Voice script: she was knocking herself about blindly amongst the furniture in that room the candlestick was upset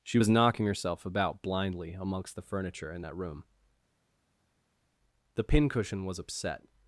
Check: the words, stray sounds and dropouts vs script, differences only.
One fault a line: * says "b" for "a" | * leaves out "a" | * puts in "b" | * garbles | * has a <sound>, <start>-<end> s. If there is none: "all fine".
* says "pincushion" for "candlestick"